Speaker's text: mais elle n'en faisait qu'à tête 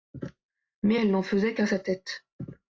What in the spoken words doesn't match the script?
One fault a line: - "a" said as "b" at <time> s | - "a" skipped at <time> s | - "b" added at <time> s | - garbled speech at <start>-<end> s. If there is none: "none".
- "sa" added at 1.6 s